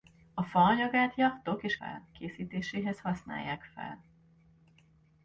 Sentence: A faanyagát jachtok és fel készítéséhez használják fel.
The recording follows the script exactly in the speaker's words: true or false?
true